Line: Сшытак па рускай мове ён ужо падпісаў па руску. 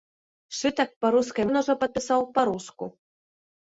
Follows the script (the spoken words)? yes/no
no